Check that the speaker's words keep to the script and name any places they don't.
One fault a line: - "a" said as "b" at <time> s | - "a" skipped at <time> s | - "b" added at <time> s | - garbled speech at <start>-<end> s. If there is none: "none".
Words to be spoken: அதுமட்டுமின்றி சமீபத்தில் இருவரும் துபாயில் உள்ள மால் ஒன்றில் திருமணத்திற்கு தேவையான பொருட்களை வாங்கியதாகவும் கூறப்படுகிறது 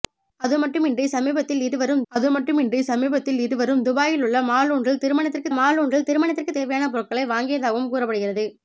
- "அதுமட்டுமின்றி சமீபத்தில் இருவரும்" added at 2.1 s
- "மால் ஒன்றில் திருமணத்திற்கு" added at 5.5 s